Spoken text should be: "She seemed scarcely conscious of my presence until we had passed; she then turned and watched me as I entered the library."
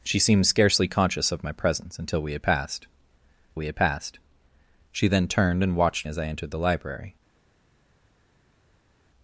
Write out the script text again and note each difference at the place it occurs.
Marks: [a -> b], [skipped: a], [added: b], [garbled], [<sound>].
"She seemed scarcely conscious of my presence until we had passed; [added: we had passed] she then turned and watched [skipped: me] as I entered the library."